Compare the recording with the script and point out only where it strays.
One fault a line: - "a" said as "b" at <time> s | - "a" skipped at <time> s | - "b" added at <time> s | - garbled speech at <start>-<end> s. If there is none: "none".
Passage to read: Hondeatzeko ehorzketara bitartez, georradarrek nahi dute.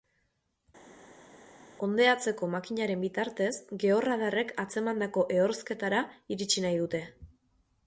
- "ehorzketara" said as "makinaren" at 2.5 s
- "atzemandako ehorzketara iritsi" added at 4.7 s